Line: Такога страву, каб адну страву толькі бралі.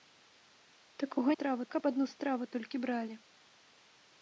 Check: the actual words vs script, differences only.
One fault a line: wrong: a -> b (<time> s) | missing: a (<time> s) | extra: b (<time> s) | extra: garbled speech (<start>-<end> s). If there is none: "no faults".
no faults